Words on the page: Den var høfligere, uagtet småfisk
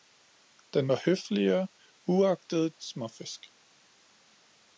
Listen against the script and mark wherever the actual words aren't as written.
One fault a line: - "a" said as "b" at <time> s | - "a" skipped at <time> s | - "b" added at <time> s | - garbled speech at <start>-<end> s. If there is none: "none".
none